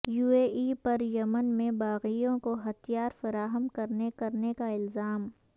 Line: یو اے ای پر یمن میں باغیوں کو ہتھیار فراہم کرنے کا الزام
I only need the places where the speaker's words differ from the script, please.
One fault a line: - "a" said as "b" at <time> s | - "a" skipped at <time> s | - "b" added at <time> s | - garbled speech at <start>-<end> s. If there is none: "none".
- "کرنے" added at 4.1 s